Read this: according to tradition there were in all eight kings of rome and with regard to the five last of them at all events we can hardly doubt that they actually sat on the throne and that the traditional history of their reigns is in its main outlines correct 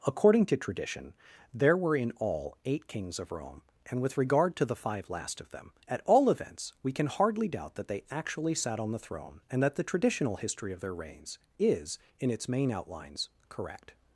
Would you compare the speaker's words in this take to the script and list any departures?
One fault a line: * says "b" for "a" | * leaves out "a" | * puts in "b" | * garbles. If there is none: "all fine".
all fine